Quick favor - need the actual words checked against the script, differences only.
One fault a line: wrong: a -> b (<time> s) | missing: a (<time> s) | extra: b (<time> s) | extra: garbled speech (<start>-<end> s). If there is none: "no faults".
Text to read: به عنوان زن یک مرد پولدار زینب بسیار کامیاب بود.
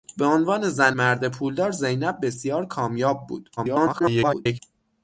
missing: یک (0.9 s)
extra: garbled speech (3.6-4.6 s)